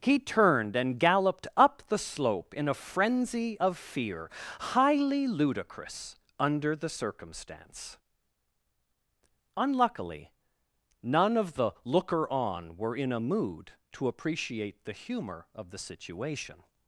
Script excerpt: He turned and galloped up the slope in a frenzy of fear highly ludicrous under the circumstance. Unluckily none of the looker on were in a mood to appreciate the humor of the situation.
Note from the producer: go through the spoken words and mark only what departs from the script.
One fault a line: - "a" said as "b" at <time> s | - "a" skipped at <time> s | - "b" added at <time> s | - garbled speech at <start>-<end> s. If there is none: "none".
none